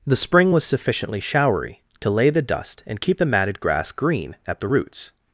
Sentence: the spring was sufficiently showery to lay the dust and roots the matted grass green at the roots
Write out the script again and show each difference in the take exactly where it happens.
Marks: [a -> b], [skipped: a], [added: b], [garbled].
the spring was sufficiently showery to lay the dust and [roots -> keep] the matted grass green at the roots